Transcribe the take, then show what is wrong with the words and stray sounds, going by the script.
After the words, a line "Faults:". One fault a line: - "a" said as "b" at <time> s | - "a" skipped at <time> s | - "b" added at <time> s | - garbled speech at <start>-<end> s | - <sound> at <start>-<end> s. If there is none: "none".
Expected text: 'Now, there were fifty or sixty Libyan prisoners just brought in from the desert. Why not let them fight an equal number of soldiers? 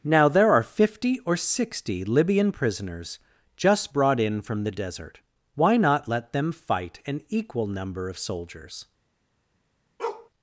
'Now, there are fifty or sixty Libyan prisoners just brought in from the desert. Why not let them fight an equal number of soldiers?
Faults:
- "were" said as "are" at 0.5 s
- bark at 10.0-10.3 s